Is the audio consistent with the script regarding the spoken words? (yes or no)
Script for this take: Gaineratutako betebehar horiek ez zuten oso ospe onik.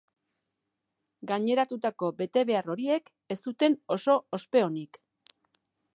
yes